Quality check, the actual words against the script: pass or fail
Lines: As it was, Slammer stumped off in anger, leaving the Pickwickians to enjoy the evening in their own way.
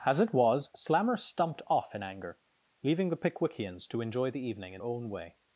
fail